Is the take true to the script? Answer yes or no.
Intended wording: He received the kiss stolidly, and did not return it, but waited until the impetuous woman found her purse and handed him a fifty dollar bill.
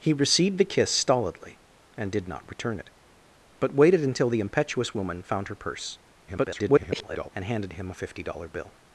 no